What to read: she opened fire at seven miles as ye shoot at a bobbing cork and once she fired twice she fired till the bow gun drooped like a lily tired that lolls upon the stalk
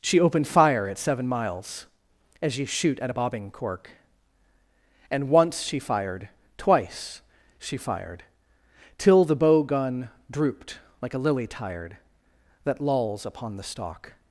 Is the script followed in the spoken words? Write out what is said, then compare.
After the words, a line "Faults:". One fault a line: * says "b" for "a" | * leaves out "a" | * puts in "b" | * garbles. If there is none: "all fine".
she opened fire at seven miles as ye shoot at a bobbing cork and once she fired twice she fired till the bow gun drooped like a lily tired that lolls upon the stalk
Faults:
all fine